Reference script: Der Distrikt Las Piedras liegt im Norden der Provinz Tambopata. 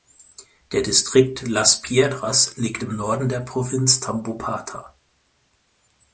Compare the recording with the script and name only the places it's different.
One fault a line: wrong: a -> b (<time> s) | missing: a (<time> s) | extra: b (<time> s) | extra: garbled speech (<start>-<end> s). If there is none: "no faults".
no faults